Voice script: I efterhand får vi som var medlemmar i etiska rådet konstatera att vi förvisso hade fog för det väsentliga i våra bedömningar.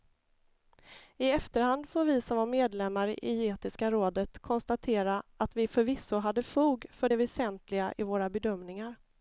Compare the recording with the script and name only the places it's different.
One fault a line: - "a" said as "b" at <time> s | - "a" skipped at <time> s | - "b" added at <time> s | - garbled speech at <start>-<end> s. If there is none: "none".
none